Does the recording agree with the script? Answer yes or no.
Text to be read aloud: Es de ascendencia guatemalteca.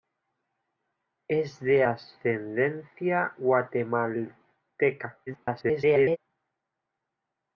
no